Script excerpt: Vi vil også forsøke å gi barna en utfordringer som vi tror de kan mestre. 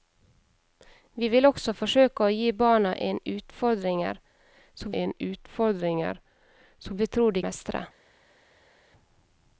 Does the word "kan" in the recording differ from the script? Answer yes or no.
yes